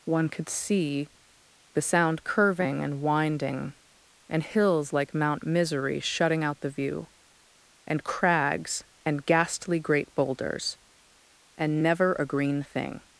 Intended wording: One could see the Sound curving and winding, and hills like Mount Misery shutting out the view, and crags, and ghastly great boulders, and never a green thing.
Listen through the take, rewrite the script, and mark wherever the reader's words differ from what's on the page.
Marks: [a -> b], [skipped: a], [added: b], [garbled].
One could see the Sound curving and winding, and hills like Mount Misery shutting out the view, and crags, and ghastly great boulders, and never a green thing.